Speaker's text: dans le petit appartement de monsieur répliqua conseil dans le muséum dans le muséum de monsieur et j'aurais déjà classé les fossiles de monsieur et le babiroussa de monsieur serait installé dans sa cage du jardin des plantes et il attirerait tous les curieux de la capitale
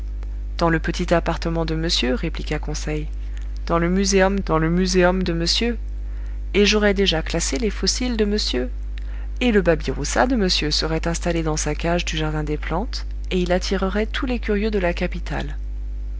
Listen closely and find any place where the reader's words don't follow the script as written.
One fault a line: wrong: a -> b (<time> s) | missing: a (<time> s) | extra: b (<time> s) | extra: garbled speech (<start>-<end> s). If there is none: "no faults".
no faults